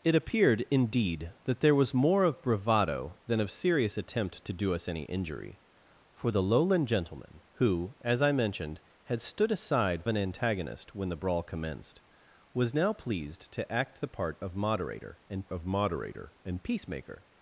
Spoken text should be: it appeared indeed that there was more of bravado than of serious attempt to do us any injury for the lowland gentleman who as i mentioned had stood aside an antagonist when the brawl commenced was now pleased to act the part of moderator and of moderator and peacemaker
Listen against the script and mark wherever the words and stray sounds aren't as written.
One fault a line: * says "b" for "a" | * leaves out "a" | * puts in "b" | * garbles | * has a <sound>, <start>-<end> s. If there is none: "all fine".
all fine